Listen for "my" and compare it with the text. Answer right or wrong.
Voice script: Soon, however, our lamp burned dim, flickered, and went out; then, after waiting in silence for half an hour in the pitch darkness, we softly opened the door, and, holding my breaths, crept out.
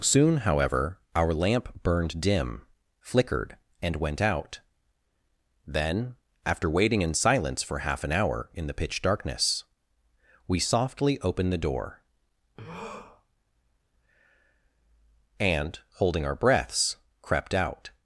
wrong